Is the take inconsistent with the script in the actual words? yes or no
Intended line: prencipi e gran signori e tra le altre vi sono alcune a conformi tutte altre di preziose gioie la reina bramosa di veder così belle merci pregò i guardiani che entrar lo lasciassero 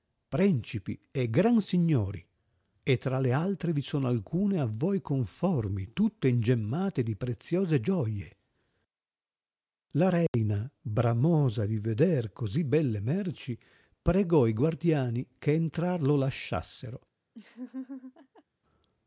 yes